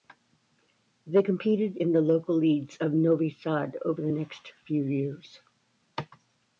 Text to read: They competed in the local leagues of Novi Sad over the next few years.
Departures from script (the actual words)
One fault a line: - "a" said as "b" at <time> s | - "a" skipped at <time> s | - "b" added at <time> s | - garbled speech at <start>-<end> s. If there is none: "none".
none